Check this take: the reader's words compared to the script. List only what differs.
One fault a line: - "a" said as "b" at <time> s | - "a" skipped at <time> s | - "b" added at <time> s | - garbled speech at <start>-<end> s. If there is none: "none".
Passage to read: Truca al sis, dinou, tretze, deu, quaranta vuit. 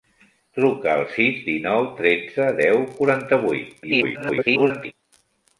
- garbled speech at 3.8-4.9 s